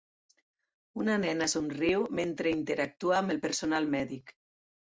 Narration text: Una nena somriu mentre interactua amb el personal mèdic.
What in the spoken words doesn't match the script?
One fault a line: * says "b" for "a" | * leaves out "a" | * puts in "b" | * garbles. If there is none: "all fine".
all fine